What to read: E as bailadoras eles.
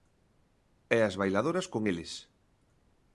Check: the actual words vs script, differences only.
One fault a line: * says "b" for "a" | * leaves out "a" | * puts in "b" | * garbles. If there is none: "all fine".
* puts in "con"